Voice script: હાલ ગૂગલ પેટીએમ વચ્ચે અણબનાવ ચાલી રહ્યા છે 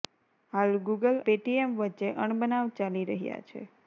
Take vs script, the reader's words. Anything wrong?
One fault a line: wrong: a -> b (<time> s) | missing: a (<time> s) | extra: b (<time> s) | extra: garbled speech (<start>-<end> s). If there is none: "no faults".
no faults